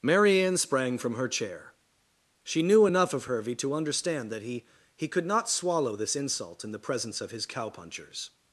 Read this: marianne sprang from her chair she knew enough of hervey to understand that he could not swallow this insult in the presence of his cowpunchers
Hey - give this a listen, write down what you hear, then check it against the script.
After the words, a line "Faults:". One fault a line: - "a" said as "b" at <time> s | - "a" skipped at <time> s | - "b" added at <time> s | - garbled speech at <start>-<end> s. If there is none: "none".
marianne sprang from her chair she knew enough of hervey to understand that he he could not swallow this insult in the presence of his cowpunchers
Faults:
- "he" added at 4.9 s